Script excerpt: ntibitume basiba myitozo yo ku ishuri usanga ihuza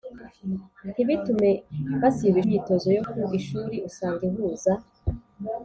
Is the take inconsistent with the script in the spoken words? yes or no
no